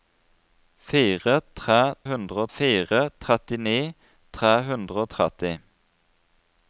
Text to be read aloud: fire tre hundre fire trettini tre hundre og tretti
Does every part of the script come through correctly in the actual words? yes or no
yes